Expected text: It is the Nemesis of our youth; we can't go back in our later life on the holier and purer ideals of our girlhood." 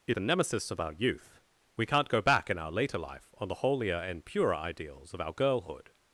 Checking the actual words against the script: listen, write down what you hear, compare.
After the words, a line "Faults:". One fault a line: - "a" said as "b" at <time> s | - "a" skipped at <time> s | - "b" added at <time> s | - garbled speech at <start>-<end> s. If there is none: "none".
It the Nemesis of our youth; we can't go back in our later life on the holier and purer ideals of our girlhood."
Faults:
- "is" skipped at 0.2 s